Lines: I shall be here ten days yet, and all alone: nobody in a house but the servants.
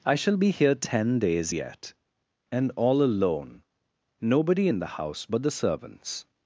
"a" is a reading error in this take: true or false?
true